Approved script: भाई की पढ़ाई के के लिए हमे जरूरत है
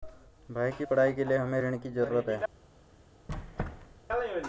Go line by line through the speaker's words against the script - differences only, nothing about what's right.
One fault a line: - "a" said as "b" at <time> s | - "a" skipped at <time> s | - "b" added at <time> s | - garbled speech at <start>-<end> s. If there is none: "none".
- "के" skipped at 1.2 s
- "ऋण की" added at 1.6 s